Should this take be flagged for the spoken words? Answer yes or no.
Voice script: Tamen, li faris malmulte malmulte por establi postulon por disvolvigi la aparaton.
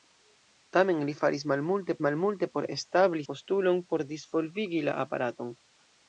no